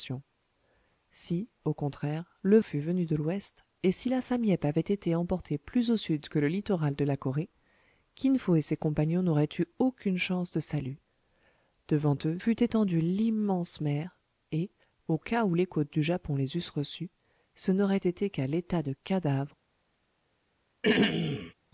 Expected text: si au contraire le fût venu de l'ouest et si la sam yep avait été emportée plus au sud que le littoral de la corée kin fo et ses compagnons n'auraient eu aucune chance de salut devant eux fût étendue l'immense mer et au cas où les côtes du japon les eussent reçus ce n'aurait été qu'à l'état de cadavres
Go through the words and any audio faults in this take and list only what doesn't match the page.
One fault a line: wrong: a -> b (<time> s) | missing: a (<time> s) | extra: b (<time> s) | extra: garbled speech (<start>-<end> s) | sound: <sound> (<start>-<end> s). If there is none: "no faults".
sound: throat clearing (20.8-21.5 s)